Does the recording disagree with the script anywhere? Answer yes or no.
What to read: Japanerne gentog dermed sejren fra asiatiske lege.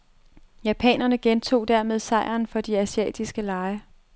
yes